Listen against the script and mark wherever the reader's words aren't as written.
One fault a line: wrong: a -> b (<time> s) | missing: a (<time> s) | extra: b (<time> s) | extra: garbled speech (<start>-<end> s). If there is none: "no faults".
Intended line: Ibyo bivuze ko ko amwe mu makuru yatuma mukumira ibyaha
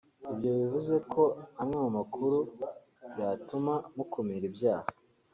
missing: ko (1.2 s)